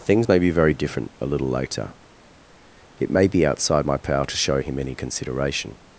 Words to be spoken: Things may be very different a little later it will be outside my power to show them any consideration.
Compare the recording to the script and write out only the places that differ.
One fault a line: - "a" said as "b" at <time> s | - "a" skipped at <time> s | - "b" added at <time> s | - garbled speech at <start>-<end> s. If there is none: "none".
- "will" said as "may" at 3.1 s
- "them" said as "him" at 4.6 s